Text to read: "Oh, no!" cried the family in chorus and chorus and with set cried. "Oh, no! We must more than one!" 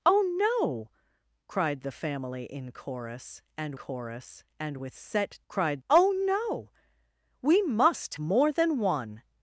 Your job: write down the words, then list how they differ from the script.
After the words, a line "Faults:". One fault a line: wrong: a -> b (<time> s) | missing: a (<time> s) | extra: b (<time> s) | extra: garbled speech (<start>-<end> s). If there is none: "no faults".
"Oh, no!" cried the family in chorus and chorus and with set cried. "Oh, no! We must more than one!"
Faults:
no faults